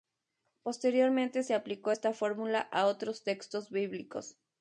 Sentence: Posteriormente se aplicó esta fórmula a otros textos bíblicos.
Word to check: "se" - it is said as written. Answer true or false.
true